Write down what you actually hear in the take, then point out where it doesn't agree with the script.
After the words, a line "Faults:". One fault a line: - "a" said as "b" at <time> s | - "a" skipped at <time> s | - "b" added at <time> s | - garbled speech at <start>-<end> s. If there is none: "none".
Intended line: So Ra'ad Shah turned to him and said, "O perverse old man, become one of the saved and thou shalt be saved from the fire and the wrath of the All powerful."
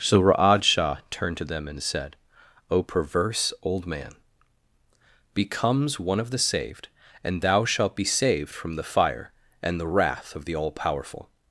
So Ra'ad Shah turned to them and said, "O perverse old man, becomes one of the saved and thou shalt be saved from the fire and the wrath of the All powerful."
Faults:
- "him" said as "them" at 1.4 s
- "become" said as "becomes" at 5.3 s